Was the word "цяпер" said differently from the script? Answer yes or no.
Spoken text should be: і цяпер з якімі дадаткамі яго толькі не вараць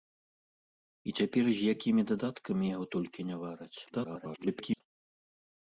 no